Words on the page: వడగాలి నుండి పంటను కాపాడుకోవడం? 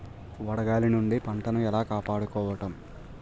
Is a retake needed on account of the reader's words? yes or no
yes